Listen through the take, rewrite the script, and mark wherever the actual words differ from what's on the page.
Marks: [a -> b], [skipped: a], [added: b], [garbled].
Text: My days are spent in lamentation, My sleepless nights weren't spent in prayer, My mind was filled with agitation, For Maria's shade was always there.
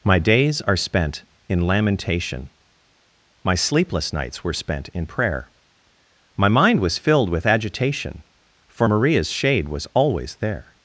My days are spent in lamentation, My sleepless nights [weren't -> were] spent in prayer, My mind was filled with agitation, For Maria's shade was always there.